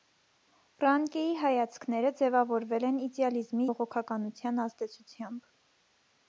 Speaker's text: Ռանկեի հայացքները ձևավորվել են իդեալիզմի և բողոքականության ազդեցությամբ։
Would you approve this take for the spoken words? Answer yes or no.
no